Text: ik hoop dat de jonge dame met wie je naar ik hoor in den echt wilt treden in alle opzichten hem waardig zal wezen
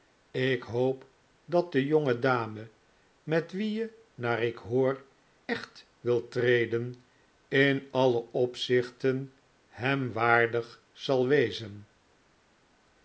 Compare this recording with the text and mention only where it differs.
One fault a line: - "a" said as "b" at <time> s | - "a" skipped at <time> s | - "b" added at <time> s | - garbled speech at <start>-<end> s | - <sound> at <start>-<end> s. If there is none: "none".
- "in den" skipped at 5.0 s